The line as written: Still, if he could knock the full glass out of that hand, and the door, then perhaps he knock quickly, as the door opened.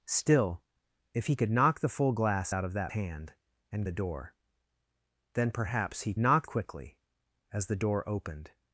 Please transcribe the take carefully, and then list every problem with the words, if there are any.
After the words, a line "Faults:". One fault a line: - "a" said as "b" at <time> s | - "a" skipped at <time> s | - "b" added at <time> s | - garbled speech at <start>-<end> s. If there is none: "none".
Still, if he could knock the full glass out of that hand, and the door, then perhaps he knock quickly, as the door opened.
Faults:
none